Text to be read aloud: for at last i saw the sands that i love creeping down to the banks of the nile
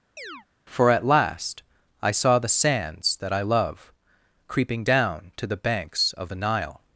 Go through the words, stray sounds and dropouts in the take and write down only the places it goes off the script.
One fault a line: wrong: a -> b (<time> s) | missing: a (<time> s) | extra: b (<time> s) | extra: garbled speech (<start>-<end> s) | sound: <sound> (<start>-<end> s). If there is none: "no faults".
sound: chirp (0.2-0.5 s)